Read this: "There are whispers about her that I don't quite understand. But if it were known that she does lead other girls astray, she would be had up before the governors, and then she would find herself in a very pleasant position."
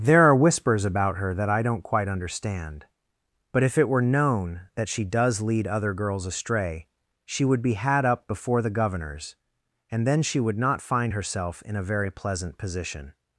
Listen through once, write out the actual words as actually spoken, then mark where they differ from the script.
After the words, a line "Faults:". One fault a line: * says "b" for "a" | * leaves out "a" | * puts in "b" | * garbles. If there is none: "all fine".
"There are whispers about her that I don't quite understand. But if it were known that she does lead other girls astray, she would be had up before the governors, and then she would not find herself in a very pleasant position."
Faults:
* puts in "not"